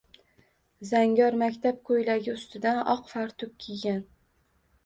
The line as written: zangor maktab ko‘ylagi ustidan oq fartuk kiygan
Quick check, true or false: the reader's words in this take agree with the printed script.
true